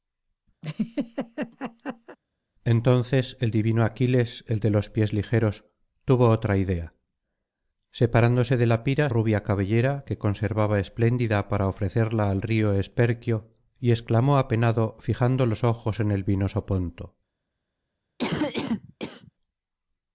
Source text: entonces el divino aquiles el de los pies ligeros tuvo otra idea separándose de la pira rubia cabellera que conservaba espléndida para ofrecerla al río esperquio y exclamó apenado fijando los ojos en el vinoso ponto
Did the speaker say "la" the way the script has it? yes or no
yes